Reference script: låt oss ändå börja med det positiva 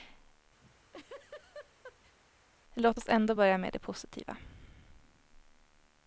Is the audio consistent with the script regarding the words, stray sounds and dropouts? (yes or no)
no